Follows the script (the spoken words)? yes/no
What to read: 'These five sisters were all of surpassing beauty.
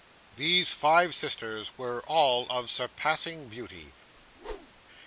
yes